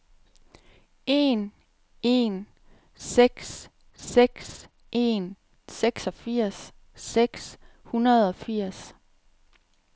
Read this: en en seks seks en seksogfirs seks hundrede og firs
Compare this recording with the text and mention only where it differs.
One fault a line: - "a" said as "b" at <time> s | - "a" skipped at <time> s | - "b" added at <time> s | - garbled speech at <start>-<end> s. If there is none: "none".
none